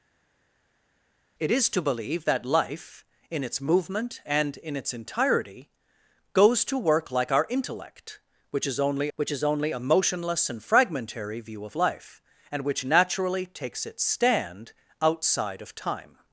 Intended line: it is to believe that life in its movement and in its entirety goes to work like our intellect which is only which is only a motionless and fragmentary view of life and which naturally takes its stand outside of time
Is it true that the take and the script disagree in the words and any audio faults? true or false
false